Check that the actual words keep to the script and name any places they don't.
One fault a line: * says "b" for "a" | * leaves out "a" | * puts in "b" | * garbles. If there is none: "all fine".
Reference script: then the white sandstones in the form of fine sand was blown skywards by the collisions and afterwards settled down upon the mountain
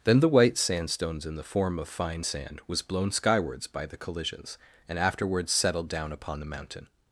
all fine